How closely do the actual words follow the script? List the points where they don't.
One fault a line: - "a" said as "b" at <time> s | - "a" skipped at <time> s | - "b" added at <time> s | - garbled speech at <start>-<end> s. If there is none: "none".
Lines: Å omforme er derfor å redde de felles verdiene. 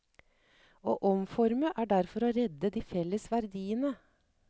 none